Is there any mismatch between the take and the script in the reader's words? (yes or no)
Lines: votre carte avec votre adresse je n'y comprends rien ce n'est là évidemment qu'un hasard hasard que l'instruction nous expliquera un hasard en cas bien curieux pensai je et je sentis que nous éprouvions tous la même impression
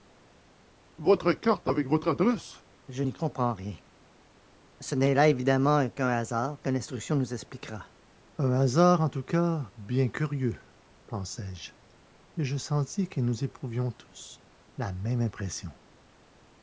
yes